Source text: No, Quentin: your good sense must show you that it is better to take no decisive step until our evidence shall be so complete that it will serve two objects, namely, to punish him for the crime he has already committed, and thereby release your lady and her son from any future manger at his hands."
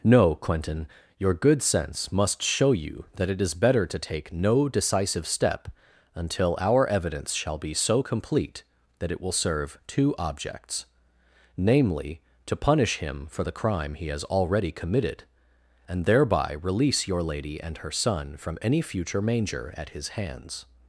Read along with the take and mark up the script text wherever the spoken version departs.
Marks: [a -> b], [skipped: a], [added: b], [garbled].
No, Quentin: your good sense must show you that it is better to take no decisive step until our evidence shall be so complete that it will serve two objects, namely, to punish him for the crime he has already committed, and thereby release your lady and her son from any future manger at his hands."